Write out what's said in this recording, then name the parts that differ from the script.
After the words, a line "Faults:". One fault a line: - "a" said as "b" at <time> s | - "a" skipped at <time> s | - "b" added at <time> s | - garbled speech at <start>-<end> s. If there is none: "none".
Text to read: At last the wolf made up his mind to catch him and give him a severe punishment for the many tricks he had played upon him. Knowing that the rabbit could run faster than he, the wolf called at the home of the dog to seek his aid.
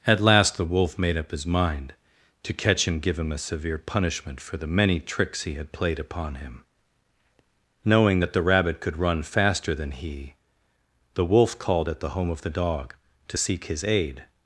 At last the wolf made up his mind to catch him give him a severe punishment for the many tricks he had played upon him. Knowing that the rabbit could run faster than he, the wolf called at the home of the dog to seek his aid.
Faults:
- "and" skipped at 3.0 s